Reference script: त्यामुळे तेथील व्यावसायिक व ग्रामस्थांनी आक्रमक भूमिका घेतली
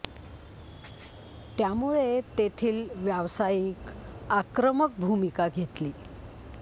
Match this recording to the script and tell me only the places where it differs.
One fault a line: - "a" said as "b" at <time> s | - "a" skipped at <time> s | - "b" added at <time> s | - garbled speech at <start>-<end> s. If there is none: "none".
- "व ग्रामस्थांनी" skipped at 4.2 s